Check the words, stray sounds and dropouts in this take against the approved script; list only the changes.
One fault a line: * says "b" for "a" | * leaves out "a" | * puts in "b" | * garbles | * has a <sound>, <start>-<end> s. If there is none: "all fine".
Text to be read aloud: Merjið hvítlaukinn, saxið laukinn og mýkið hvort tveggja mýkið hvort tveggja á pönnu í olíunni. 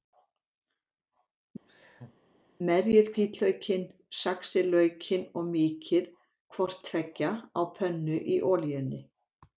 * has a laugh, 1.7-2.2 s
* leaves out "mýkið hvort tveggja"